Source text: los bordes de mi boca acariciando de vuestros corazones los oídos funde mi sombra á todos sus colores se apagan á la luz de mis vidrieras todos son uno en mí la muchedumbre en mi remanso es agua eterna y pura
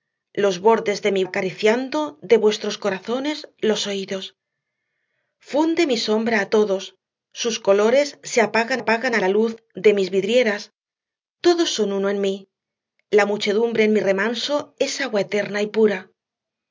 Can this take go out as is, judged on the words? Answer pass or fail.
fail